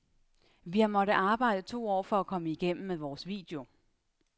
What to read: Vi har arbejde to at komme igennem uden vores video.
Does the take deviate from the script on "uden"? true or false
true